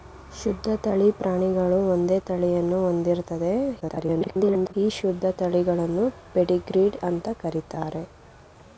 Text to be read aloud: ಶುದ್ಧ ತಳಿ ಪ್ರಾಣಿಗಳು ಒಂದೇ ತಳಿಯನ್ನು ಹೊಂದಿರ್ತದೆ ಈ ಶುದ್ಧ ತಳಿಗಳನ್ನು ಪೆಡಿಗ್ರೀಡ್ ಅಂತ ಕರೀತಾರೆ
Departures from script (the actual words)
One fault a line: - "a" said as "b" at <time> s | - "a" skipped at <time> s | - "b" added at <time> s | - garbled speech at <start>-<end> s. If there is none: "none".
- garbled speech at 3.8-4.7 s